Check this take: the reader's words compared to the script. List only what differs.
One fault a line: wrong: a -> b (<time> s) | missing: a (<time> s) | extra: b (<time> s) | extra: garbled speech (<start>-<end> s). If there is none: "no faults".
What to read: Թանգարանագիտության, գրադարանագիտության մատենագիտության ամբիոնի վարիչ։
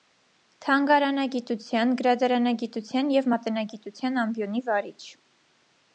extra: և (3.2 s)